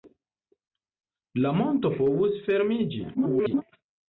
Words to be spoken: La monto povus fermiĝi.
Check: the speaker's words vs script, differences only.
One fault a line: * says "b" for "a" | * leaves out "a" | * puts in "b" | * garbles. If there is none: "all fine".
* garbles